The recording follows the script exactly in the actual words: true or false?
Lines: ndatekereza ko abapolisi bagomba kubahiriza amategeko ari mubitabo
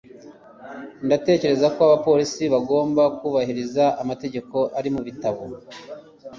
true